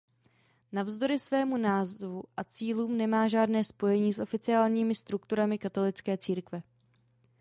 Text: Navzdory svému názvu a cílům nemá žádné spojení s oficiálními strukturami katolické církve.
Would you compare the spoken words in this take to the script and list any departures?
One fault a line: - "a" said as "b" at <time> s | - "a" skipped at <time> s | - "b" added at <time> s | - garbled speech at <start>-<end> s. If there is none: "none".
none